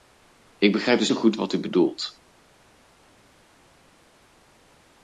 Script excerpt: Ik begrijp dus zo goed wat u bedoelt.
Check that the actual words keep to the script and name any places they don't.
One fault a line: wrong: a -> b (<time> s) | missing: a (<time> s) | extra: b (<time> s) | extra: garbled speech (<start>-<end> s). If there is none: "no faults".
no faults